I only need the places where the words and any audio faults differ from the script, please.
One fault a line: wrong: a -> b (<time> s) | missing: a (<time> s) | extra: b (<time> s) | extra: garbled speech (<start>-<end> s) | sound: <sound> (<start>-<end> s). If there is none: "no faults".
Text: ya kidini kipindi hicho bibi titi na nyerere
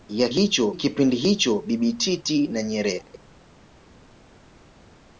wrong: kidini -> hicho (0.3 s)